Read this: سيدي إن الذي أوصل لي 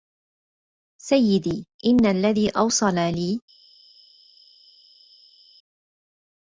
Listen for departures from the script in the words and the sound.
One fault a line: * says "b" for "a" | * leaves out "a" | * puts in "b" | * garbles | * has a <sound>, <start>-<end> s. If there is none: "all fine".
all fine